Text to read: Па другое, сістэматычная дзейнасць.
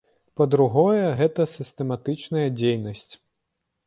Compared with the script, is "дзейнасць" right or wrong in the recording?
right